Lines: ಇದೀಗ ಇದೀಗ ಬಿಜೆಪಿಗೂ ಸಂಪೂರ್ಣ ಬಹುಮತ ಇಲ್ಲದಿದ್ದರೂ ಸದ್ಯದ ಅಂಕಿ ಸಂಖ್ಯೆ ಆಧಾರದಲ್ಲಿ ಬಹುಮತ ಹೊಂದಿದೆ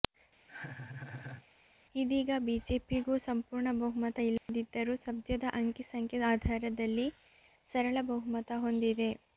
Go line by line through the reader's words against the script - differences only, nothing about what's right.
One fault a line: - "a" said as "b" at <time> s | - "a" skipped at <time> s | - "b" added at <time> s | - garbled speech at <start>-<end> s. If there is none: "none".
- "ಇದೀಗ" skipped at 2.3 s
- "ಸರಳ" added at 7.7 s